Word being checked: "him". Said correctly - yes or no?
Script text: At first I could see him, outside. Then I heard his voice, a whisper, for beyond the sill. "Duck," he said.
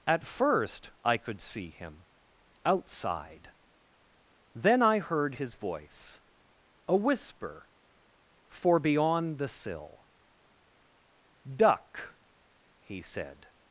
yes